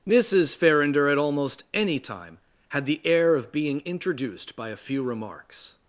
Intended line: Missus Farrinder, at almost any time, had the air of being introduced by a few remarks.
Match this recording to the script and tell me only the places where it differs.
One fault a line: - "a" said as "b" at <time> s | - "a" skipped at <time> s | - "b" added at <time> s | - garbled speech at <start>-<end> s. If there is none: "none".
none